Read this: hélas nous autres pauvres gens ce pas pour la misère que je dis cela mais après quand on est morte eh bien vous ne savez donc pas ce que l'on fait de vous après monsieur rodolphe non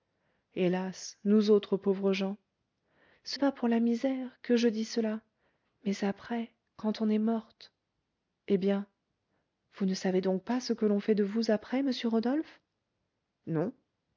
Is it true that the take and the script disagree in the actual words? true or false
false